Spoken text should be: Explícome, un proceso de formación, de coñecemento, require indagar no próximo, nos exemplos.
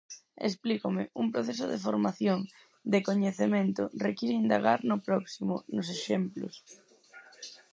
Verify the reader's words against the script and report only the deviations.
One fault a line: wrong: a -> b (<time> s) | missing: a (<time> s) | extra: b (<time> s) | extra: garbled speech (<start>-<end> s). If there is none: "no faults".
no faults